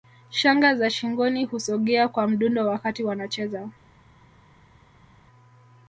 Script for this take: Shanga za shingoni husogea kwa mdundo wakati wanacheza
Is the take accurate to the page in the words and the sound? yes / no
yes